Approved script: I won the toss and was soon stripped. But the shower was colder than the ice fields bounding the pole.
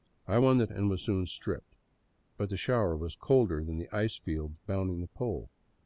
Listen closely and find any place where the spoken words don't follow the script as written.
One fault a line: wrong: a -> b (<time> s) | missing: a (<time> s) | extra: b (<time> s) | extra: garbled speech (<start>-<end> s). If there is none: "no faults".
missing: toss (0.6 s)